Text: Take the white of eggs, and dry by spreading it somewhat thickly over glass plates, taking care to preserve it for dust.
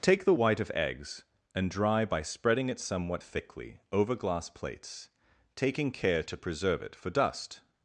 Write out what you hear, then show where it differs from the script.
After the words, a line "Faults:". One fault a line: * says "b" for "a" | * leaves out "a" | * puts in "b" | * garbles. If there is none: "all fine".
Take the white of eggs, and dry by spreading it somewhat thickly over glass plates, taking care to preserve it for dust.
Faults:
all fine